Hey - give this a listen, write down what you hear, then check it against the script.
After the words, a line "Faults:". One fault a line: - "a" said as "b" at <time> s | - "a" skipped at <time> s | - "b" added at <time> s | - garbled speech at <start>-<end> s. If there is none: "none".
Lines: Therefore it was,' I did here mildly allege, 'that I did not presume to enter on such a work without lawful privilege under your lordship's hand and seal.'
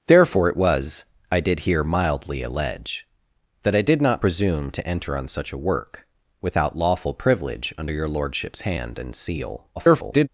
Therefore it was,' I did here mildly allege, 'that I did not presume to enter on such a work without lawful privilege under your lordship's hand and seal.' [garbled]
Faults:
- garbled speech at 9.8-10.3 s